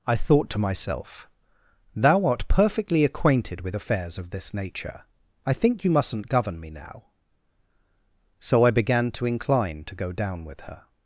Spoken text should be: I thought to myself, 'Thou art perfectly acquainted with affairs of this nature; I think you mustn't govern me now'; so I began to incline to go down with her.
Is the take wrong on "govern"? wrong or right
right